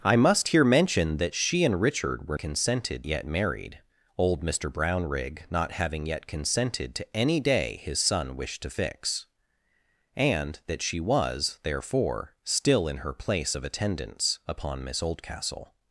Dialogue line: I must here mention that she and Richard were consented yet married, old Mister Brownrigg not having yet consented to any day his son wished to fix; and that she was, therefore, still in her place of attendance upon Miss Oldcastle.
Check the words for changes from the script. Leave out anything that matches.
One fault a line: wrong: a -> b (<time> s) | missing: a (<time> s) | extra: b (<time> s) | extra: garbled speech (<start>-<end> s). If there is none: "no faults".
no faults